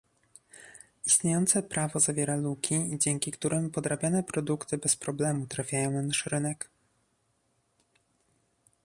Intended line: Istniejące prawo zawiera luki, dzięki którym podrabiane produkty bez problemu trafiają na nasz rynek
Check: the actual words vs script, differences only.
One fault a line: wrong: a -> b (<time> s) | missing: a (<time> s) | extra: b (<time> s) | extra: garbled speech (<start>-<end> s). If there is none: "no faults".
no faults